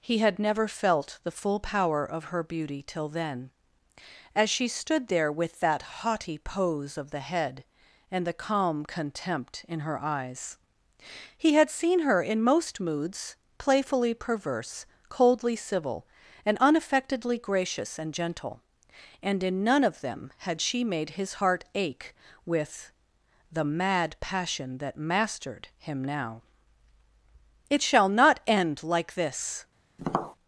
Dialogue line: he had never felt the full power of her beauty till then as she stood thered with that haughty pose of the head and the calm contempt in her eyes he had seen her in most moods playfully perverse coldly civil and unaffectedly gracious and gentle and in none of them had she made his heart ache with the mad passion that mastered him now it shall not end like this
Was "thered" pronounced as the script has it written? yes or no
no